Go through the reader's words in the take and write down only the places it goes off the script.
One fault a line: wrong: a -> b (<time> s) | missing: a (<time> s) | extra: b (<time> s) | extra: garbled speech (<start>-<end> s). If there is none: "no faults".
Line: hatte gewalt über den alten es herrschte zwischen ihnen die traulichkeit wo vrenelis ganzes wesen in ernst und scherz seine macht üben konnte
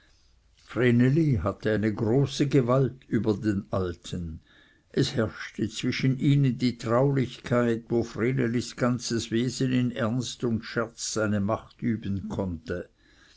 extra: eine große (1.7 s)